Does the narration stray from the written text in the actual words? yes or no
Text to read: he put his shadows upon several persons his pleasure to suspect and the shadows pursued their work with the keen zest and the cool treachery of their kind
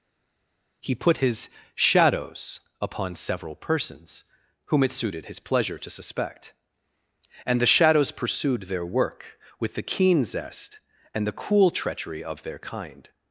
yes